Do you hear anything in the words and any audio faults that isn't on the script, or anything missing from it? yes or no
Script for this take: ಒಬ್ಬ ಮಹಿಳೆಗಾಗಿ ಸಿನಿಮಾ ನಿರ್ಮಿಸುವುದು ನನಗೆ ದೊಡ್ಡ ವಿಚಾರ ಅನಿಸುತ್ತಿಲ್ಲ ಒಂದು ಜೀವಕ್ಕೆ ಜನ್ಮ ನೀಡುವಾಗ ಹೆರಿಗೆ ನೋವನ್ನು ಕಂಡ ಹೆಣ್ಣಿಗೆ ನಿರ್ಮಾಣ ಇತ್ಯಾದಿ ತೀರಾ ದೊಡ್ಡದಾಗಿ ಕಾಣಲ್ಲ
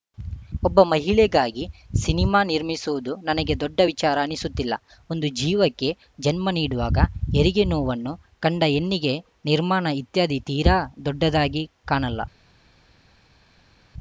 no